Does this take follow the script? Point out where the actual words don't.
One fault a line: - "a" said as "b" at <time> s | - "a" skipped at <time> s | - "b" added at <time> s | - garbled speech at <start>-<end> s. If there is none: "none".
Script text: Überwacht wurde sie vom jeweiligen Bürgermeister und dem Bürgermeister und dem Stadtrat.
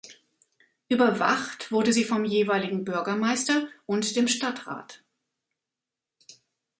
- "Bürgermeister und dem" skipped at 4.3 s